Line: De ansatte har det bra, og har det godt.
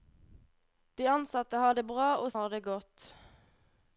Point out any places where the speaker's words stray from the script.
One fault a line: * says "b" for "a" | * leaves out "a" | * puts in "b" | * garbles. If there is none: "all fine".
all fine